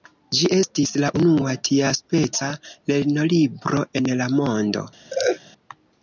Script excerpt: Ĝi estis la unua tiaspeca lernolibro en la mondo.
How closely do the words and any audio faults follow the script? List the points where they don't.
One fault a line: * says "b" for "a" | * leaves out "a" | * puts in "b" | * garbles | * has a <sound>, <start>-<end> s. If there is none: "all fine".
* has a laugh, 5.1-5.4 s